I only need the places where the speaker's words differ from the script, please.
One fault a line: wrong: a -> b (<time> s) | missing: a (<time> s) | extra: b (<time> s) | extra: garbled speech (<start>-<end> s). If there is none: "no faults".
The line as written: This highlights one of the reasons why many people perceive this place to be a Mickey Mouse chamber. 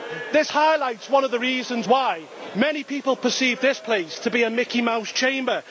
no faults